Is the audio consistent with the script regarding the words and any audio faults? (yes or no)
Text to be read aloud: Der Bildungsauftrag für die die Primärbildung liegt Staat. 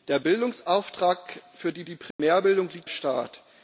no